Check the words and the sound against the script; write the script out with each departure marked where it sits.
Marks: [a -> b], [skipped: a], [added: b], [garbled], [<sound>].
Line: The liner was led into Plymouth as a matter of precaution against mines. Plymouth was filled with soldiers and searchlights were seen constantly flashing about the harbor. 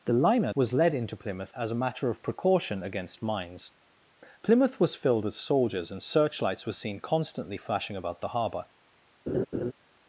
The liner was led into Plymouth as a matter of precaution against mines. Plymouth was filled with soldiers and searchlights were seen constantly flashing about the harbor. [laugh]